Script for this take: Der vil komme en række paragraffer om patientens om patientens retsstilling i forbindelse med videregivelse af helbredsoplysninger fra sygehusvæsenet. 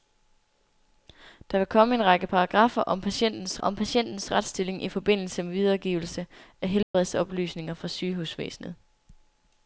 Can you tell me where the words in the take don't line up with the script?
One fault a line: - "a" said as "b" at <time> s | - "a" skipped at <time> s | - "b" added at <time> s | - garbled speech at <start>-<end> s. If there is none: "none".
none